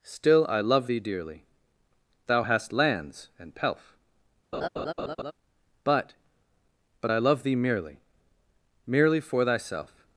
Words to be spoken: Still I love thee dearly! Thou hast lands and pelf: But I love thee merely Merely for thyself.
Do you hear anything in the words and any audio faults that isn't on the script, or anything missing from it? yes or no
yes